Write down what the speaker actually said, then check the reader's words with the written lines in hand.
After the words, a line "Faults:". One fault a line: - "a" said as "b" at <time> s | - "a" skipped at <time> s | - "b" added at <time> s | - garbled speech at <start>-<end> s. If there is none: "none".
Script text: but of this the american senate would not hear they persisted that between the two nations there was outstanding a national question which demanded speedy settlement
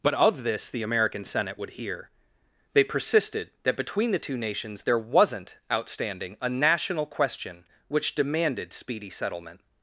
but of this the american senate would hear they persisted that between the two nations there wasn't outstanding a national question which demanded speedy settlement
Faults:
- "not" skipped at 1.7 s
- "was" said as "wasn't" at 5.0 s